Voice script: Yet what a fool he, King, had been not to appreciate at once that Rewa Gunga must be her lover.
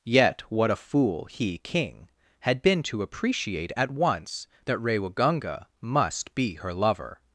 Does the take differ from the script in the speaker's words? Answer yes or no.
yes